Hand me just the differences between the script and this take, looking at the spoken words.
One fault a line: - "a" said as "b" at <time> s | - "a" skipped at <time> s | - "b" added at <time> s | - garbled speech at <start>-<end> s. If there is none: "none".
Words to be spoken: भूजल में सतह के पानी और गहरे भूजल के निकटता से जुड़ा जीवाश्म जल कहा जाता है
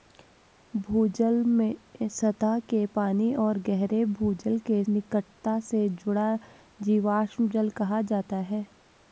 none